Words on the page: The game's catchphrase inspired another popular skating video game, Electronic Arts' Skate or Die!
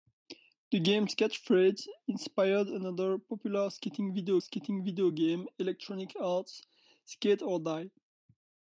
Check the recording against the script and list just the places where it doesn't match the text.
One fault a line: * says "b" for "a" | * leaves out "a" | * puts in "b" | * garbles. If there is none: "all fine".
* puts in "skating video"